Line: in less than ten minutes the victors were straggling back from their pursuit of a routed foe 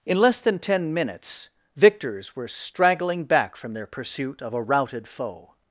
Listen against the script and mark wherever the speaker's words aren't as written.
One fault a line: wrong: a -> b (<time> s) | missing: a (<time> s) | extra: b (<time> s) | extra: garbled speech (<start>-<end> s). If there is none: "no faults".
missing: the (1.5 s)